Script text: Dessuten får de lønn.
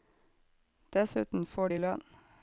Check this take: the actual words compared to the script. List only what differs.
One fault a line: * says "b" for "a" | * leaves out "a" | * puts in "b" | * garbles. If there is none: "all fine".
all fine